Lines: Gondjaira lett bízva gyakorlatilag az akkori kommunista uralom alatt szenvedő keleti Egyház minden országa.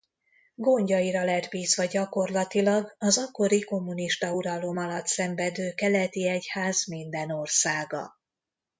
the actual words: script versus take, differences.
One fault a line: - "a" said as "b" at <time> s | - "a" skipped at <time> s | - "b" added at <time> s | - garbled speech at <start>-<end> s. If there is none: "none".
none